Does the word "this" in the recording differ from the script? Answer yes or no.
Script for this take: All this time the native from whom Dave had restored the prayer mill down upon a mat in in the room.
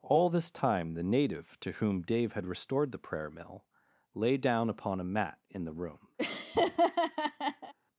no